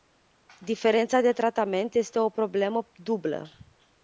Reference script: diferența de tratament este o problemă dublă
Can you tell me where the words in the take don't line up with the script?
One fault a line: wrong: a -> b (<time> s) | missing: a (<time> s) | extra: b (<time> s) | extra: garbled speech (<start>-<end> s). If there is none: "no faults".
no faults